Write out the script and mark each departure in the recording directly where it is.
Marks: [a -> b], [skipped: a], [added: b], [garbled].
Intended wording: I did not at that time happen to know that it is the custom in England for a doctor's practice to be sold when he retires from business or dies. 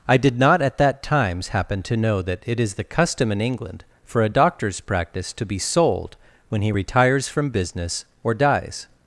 I did not at that [time -> times] happen to know that it is the custom in England for a doctor's practice to be sold when he retires from business or dies.